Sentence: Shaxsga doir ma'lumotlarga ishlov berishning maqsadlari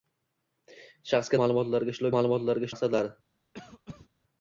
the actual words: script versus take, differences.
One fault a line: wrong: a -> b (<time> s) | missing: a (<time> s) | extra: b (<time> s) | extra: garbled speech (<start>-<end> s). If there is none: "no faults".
missing: doir (1.4 s)
wrong: berishning -> ma'lumotlarga (2.2 s)